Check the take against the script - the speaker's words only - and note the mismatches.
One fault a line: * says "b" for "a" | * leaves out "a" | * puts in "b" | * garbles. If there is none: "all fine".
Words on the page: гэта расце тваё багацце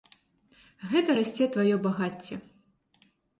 all fine